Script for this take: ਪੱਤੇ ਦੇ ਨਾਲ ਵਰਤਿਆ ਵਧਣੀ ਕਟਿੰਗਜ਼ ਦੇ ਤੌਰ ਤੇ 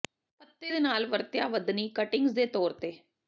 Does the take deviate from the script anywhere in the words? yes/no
no